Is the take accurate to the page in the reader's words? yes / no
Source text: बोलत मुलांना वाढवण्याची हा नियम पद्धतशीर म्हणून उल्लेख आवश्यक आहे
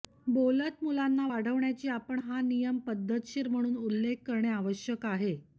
no